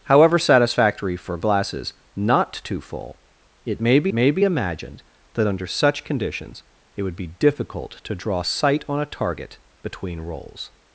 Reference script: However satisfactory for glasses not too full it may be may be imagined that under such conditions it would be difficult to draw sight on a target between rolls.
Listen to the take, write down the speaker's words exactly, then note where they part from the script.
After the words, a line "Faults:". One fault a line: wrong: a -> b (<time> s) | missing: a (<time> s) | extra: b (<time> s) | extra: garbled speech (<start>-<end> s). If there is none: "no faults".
However satisfactory for glasses not too full it may be may be imagined that under such conditions it would be difficult to draw sight on a target between rolls.
Faults:
no faults